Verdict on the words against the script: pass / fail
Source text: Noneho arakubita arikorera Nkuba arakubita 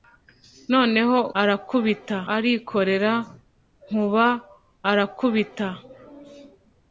pass